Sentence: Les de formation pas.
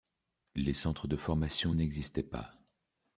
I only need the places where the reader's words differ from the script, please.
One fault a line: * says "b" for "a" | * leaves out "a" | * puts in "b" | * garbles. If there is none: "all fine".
* puts in "centres"
* puts in "n'existaient"